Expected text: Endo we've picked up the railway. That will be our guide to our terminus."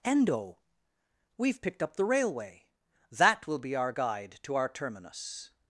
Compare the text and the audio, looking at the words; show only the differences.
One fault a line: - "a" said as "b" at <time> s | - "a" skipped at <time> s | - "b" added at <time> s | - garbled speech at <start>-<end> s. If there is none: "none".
none